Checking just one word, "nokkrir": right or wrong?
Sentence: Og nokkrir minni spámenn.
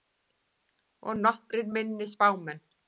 right